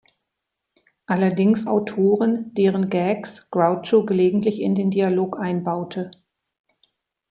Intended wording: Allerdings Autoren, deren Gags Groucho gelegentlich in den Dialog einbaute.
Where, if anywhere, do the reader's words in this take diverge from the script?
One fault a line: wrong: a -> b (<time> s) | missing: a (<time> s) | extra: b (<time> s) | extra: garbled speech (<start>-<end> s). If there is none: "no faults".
no faults